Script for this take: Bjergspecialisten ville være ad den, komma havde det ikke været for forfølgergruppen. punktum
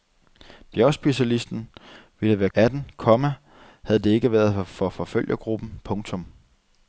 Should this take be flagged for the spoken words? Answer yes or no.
no